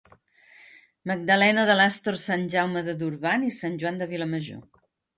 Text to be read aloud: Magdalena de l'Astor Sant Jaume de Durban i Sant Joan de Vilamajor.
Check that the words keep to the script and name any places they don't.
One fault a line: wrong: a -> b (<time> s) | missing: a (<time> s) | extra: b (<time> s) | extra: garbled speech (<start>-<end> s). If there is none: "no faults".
no faults